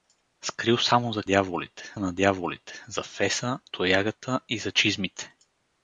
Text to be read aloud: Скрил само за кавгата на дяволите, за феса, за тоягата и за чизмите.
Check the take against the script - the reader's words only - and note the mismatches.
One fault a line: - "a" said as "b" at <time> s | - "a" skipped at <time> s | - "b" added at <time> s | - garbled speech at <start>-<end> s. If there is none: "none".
- "кавгата" said as "дяволите" at 1.2 s
- "за" skipped at 3.6 s